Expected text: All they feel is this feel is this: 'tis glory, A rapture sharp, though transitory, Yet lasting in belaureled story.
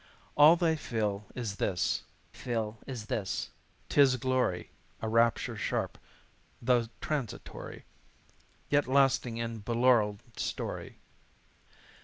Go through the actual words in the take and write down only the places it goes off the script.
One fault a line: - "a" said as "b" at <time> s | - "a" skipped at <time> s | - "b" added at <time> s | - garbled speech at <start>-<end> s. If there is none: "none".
none